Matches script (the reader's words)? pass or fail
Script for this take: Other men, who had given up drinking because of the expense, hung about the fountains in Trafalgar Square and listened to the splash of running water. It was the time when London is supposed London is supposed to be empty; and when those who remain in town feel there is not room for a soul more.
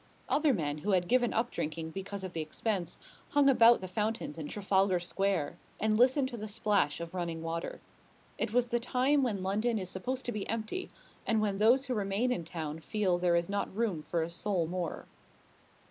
fail